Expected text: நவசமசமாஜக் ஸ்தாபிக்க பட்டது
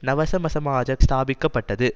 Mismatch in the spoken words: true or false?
false